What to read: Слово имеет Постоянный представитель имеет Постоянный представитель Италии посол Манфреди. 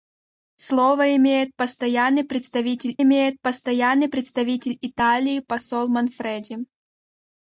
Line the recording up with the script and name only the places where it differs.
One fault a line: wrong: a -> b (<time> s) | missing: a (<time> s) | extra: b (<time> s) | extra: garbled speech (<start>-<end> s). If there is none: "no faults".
no faults